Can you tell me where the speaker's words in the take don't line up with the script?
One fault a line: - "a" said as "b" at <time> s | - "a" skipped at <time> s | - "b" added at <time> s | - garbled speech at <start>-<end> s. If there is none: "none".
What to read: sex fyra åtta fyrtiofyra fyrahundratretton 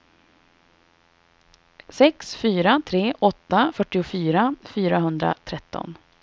- "tre" added at 2.9 s